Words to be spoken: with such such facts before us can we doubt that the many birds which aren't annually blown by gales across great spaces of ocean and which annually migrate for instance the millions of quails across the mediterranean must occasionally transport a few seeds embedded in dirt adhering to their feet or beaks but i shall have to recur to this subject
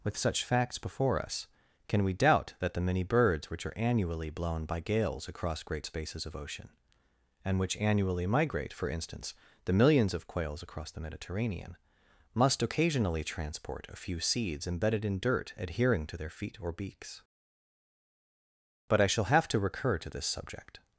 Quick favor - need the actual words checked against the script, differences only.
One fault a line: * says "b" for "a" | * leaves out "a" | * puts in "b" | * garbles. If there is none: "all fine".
* leaves out "such"
* says "are" for "aren't"